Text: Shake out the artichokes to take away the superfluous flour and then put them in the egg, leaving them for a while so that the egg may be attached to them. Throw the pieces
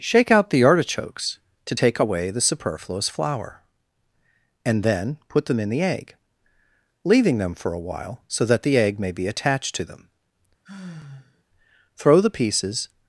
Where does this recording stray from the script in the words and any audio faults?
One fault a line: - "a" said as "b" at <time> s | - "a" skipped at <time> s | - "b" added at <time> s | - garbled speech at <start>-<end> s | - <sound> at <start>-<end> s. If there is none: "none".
- sigh at 10.6-11.4 s